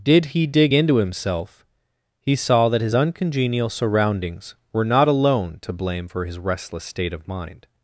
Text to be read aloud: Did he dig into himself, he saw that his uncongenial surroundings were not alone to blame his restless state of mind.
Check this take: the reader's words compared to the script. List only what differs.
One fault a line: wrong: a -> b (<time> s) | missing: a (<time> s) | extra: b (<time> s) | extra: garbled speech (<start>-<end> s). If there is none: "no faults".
extra: for (6.0 s)